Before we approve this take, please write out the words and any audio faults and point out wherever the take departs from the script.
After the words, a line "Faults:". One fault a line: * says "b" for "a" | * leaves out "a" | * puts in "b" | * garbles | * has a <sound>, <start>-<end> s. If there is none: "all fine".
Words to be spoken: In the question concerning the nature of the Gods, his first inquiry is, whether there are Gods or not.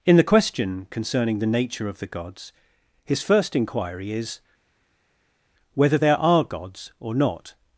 In the question concerning the nature of the Gods, his first inquiry is, whether there are Gods or not.
Faults:
all fine